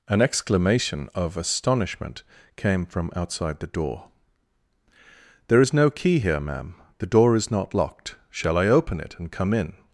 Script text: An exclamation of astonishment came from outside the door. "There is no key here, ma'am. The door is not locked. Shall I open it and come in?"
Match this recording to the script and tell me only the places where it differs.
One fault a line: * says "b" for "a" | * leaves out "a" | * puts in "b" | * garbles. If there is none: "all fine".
all fine